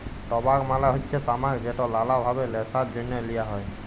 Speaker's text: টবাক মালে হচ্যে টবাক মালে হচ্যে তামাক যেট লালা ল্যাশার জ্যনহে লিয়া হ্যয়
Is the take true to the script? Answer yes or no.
no